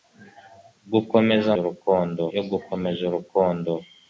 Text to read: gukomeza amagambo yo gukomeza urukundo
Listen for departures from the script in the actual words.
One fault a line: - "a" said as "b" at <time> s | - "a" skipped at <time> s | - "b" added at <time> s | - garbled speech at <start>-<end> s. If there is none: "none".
- "amagambo" said as "urukundo" at 1.6 s